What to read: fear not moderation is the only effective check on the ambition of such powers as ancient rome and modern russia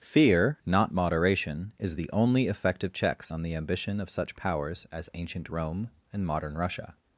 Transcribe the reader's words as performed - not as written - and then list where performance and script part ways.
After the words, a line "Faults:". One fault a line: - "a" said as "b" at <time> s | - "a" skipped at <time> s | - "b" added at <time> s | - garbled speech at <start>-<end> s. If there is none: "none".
fear not moderation is the only effective checks on the ambition of such powers as ancient rome and modern russia
Faults:
- "check" said as "checks" at 2.9 s